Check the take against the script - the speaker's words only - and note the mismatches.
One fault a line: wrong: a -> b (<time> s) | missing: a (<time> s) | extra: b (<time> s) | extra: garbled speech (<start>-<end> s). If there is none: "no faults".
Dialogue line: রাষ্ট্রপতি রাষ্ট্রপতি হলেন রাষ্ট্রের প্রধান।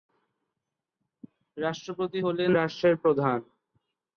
missing: রাষ্ট্রপতি (2.2 s)